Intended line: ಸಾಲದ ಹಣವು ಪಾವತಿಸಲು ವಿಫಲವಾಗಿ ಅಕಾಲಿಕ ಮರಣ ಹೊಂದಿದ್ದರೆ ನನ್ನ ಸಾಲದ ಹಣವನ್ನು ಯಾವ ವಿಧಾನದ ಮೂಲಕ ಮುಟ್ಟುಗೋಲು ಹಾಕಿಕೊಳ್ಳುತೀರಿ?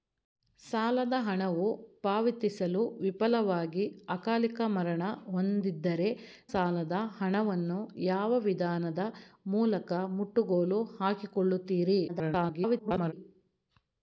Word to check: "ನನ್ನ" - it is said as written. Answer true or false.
false